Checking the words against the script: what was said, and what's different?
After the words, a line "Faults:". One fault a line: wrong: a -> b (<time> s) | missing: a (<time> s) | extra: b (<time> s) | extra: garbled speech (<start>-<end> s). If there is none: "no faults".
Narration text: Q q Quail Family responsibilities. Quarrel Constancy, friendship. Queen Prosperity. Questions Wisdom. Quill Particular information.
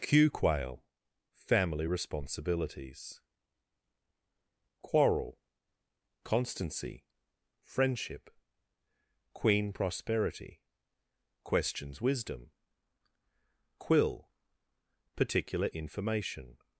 Q Quail Family responsibilities. Quarrel Constancy, friendship. Queen Prosperity. Questions Wisdom. Quill Particular information.
Faults:
missing: q (0.3 s)